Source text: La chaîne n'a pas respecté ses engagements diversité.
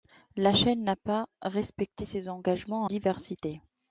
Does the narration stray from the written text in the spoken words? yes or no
no